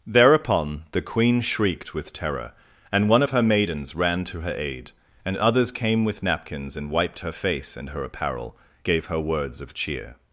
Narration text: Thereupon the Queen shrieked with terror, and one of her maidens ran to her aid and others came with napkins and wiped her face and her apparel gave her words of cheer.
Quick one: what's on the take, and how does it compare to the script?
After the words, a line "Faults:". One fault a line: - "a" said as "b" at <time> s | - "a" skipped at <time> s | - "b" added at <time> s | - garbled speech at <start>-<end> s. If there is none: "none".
Thereupon the Queen shrieked with terror, and one of her maidens ran to her aid and others came with napkins and wiped her face and her apparel gave her words of cheer.
Faults:
none